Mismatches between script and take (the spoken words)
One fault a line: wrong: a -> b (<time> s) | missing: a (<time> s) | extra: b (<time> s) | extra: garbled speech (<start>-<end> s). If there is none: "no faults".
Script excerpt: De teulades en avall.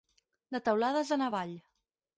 no faults